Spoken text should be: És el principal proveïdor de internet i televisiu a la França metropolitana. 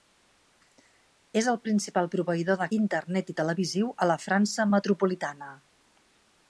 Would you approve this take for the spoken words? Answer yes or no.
yes